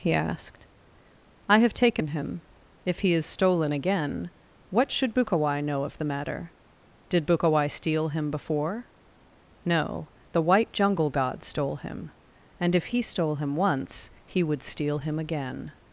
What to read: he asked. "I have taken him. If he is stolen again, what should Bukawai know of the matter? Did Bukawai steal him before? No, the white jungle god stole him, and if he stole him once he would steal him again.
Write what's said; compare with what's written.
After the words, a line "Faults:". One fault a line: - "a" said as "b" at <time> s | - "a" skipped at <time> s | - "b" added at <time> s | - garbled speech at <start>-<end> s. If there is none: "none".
he asked. "I have taken him. If he is stolen again, what should Bukawai know of the matter? Did Bukawai steal him before? No, the white jungle god stole him, and if he stole him once he would steal him again.
Faults:
none